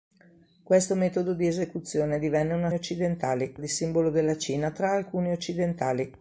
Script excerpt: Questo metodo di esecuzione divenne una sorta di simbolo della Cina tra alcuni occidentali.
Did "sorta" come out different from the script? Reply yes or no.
yes